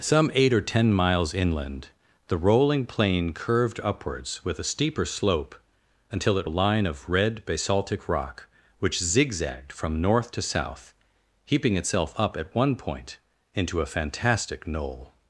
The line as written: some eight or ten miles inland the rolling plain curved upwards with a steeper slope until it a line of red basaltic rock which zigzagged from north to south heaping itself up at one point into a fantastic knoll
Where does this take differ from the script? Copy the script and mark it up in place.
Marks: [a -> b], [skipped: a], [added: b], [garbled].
some eight or ten miles inland the rolling plain curved upwards with a steeper slope until it a line of red basaltic rock which zigzagged from north to south heaping itself up at one point into a fantastic knoll